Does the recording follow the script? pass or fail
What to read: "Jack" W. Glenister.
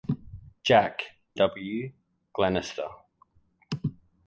pass